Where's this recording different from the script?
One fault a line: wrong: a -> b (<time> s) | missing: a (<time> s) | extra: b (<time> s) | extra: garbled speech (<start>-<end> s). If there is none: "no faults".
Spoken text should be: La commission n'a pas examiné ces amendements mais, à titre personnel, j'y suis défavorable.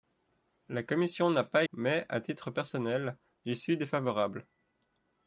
missing: examiné ces amendements (1.6 s)